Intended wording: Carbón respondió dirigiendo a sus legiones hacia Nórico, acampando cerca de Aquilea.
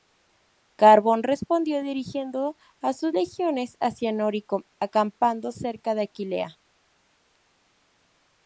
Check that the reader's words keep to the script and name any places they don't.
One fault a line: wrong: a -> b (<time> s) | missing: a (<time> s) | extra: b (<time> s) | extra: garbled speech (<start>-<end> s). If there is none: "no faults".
no faults